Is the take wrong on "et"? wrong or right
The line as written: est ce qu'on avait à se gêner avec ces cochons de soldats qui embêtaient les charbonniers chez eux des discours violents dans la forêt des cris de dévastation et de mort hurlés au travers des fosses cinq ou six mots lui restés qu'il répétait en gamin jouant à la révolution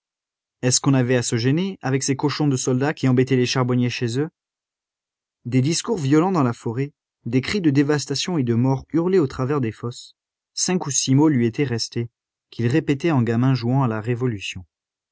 right